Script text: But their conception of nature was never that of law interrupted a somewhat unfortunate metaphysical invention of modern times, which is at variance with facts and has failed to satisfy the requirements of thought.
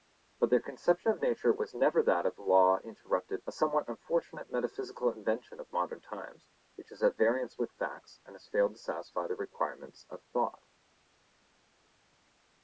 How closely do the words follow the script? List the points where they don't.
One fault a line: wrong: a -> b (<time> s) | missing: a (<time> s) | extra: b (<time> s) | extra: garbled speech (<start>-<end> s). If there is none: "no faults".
no faults